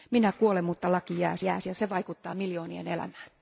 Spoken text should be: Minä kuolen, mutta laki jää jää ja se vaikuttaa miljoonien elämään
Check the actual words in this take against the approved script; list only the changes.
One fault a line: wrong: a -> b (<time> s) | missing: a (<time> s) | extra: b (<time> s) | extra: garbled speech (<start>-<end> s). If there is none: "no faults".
no faults